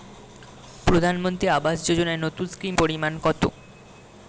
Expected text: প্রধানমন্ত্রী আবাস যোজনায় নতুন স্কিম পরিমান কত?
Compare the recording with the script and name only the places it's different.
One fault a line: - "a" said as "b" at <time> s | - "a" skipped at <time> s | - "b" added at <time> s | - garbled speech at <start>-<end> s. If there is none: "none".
none